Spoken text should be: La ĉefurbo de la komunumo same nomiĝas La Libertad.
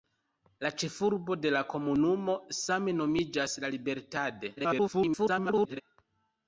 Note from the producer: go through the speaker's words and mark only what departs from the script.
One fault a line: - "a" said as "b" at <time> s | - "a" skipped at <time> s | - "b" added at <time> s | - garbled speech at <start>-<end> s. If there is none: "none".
- garbled speech at 4.6-5.8 s